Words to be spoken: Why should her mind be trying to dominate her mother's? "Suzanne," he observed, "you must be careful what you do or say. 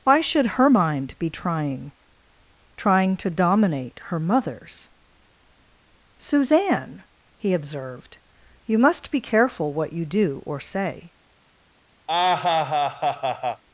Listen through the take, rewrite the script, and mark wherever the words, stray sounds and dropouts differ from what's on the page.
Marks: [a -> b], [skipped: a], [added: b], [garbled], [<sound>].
Why should her mind be trying [added: trying] to dominate her mother's? "Suzanne," he observed, "you must be careful what you do or say. [laugh]